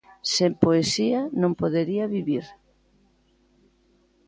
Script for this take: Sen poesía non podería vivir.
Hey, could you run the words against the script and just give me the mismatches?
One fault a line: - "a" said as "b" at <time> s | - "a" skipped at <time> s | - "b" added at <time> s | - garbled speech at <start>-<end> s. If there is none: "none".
none